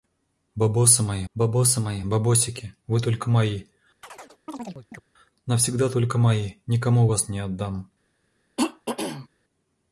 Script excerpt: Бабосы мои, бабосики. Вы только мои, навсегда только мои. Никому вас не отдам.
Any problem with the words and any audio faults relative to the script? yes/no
yes